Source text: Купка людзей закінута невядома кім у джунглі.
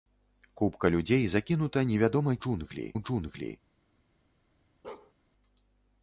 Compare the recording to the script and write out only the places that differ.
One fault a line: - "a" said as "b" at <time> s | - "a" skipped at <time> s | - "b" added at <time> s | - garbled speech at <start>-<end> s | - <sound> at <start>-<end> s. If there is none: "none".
- "кім" said as "джунглі" at 2.4 s
- bark at 4.8-5.1 s